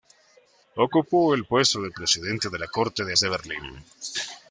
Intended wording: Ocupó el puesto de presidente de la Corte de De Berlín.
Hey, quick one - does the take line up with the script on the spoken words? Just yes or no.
yes